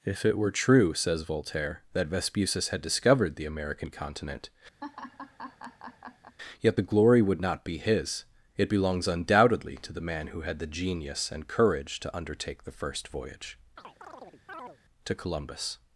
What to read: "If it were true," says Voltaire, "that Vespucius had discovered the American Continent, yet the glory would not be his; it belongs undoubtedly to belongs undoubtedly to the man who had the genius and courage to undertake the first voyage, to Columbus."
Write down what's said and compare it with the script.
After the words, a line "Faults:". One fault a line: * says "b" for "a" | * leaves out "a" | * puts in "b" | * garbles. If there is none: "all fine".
"If it were true," says Voltaire, "that Vespucius had discovered the American Continent, yet the glory would not be his; it belongs undoubtedly to the man who had the genius and courage to undertake the first voyage, to Columbus."
Faults:
* leaves out "belongs undoubtedly to"